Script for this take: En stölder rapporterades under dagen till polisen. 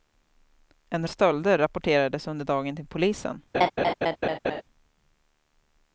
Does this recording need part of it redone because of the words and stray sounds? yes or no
yes